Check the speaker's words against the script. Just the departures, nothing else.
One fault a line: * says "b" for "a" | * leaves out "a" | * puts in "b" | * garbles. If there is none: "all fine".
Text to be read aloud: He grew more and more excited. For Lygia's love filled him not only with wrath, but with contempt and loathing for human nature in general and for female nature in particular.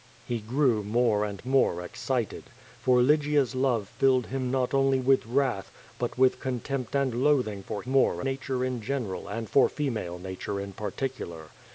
* says "more" for "human"